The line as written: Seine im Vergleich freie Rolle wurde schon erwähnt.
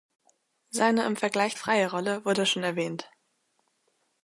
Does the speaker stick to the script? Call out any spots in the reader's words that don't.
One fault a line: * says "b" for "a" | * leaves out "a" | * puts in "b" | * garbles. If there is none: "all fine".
all fine